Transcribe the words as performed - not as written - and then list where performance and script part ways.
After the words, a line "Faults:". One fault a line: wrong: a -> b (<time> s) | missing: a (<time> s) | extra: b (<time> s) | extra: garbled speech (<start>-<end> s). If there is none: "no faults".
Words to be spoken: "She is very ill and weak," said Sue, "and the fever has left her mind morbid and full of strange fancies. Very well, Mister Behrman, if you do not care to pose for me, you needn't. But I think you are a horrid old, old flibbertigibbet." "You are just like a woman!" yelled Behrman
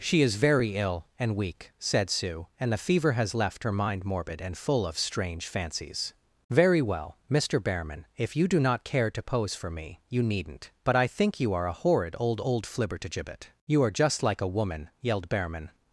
"She is very ill and weak," said Sue, "and the fever has left her mind morbid and full of strange fancies. Very well, Mister Behrman, if you do not care to pose for me, you needn't. But I think you are a horrid old, old flibbertigibbet." "You are just like a woman!" yelled Behrman
Faults:
no faults